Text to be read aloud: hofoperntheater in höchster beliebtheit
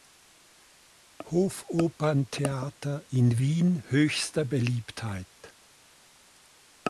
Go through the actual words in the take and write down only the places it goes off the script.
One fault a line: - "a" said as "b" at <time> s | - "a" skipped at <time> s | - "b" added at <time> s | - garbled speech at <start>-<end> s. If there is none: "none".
- "wien" added at 3.4 s